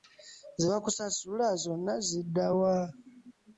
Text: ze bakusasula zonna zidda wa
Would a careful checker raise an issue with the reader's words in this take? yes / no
no